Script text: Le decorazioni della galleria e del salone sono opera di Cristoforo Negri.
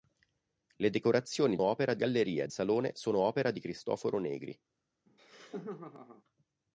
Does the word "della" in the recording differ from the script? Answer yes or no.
yes